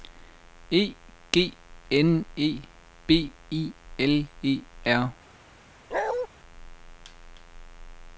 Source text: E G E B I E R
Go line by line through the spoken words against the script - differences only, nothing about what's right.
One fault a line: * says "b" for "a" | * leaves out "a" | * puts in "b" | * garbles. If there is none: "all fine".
* puts in "N"
* puts in "L"